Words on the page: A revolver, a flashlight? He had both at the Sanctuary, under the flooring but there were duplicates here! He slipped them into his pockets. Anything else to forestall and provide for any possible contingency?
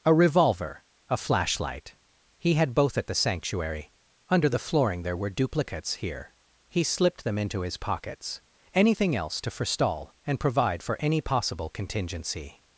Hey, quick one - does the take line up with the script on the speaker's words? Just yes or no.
no